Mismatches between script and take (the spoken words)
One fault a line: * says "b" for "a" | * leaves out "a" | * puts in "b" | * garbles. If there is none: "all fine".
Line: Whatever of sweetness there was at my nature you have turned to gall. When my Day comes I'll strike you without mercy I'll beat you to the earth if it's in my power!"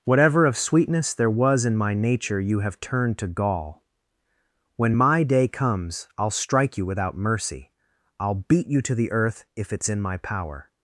* says "in" for "at"